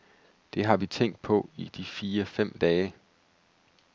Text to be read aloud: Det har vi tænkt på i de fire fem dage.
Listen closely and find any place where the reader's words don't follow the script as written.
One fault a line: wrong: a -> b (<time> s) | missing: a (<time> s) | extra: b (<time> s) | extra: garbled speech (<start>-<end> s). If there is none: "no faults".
no faults